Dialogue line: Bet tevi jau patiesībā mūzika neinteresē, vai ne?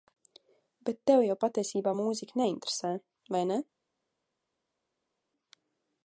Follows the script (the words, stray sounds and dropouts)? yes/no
yes